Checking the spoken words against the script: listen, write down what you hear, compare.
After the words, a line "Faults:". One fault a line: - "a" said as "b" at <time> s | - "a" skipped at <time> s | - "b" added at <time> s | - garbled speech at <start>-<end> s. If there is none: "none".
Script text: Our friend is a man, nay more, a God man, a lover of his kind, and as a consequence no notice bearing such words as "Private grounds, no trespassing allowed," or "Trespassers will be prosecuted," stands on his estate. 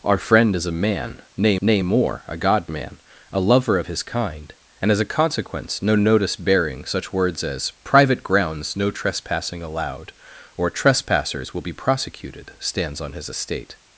Our friend is a man, nay nay more, a God man, a lover of his kind, and as a consequence no notice bearing such words as "Private grounds, no trespassing allowed," or "Trespassers will be prosecuted," stands on his estate.
Faults:
- "nay" added at 1.6 s